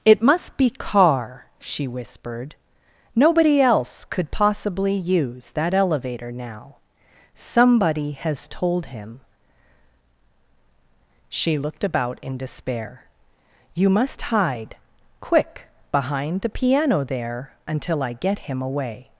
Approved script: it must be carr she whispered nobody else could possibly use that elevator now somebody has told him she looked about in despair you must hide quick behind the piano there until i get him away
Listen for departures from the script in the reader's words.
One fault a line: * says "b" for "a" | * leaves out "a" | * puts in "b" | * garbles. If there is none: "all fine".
all fine